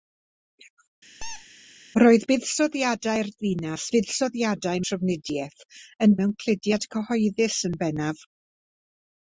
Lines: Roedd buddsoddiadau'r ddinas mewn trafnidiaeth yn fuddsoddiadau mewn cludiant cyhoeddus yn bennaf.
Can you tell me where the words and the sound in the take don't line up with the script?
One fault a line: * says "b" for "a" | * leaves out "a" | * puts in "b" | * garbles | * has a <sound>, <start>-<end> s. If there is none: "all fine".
* has a squeak, 1.2-1.5 s
* says "fuddsoddiadau" for "mewn"
* leaves out "fuddsoddiadau"